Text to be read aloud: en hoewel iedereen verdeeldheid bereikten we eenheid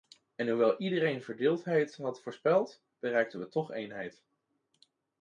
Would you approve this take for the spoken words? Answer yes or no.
no